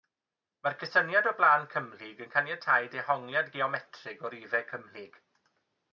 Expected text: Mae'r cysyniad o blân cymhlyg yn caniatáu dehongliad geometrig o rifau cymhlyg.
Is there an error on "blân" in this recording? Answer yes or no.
no